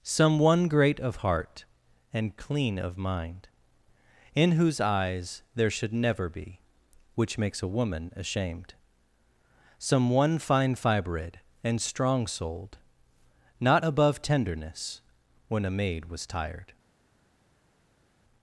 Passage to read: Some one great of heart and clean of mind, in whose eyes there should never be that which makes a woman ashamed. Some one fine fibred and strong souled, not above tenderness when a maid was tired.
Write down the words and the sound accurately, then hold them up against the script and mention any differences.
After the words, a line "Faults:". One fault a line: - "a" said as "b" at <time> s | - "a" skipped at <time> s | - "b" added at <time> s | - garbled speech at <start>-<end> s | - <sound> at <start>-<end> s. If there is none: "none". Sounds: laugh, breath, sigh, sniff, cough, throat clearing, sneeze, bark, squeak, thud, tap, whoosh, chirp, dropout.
Some one great of heart and clean of mind, in whose eyes there should never be which makes a woman ashamed. Some one fine fibred and strong souled, not above tenderness when a maid was tired.
Faults:
- "that" skipped at 6.6 s